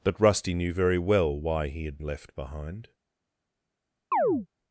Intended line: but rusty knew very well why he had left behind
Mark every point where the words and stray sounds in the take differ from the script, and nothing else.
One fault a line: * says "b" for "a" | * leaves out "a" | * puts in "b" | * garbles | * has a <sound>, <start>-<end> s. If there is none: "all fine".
* has a chirp, 4.1-4.5 s